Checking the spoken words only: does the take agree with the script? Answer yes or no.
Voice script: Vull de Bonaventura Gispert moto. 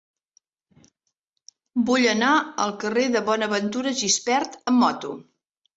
no